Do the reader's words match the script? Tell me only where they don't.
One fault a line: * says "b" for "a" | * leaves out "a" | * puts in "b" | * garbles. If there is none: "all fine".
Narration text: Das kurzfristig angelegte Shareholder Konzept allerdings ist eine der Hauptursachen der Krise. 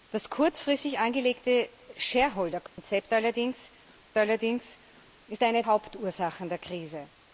* puts in "allerdings"
* leaves out "der"